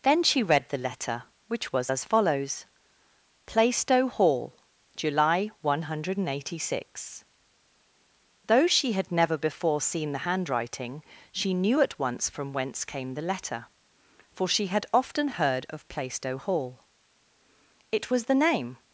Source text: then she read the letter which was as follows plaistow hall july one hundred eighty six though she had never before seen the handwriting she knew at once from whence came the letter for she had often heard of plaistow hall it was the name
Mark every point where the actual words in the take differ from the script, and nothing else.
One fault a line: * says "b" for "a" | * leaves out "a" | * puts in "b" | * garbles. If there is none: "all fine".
all fine